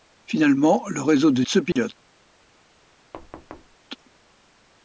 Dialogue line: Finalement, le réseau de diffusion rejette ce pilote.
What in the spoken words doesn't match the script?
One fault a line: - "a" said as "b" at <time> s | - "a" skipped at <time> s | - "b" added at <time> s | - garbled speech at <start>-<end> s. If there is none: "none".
- "diffusion rejette" skipped at 1.4 s